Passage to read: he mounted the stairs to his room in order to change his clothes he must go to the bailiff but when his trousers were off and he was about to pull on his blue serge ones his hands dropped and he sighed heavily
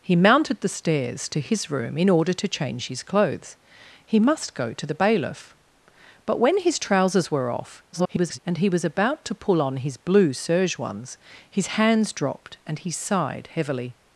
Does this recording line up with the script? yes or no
no